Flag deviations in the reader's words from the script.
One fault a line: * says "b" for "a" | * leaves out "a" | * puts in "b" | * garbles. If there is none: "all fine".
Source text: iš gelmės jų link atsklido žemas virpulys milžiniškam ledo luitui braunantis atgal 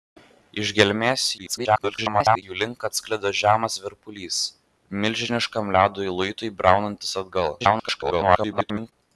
* garbles
* garbles